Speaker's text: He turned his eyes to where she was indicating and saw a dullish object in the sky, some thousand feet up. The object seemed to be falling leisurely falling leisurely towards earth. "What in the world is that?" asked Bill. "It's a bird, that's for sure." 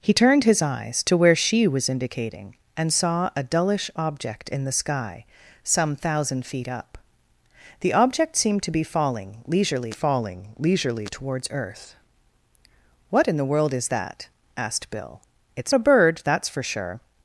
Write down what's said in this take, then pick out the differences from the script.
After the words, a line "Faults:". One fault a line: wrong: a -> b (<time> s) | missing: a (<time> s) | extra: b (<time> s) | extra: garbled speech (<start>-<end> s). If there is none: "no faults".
He turned his eyes to where she was indicating and saw a dullish object in the sky, some thousand feet up. The object seemed to be falling leisurely falling leisurely towards earth. "What in the world is that?" asked Bill. "It's a bird, that's for sure."
Faults:
no faults